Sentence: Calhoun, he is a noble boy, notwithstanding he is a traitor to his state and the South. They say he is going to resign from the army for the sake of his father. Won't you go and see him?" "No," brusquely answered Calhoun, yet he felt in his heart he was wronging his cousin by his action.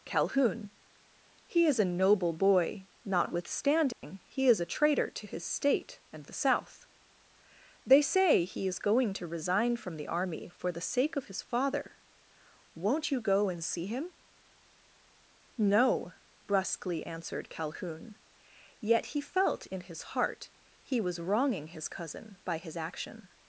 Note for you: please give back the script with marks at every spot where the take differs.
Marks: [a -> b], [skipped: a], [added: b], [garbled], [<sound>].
Calhoun, he is a noble boy, notwithstanding [dropout] he is a traitor to his state and the South. They say he is going to resign from the army for the sake of his father. Won't you go and see him?" "No," brusquely answered Calhoun, yet he felt in his heart he was wronging his cousin by his action.